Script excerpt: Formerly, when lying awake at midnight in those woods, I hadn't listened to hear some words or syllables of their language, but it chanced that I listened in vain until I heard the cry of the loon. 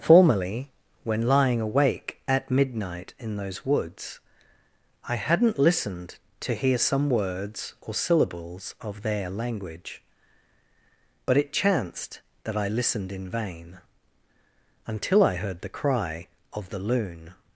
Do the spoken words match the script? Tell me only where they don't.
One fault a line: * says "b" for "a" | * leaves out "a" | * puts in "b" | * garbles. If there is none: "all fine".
all fine